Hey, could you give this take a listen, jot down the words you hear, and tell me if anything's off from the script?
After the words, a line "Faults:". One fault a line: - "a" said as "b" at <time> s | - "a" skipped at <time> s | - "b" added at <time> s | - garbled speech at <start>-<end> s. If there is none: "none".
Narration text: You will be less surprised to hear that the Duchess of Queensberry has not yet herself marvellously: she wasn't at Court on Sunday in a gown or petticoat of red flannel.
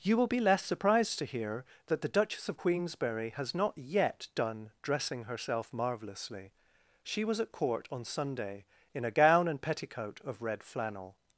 You will be less surprised to hear that the Duchess of Queensberry has not yet done dressing herself marvellously: she was at Court on Sunday in a gown and petticoat of red flannel.
Faults:
- "done dressing" added at 4.3 s
- "wasn't" said as "was" at 7.2 s
- "or" said as "and" at 9.5 s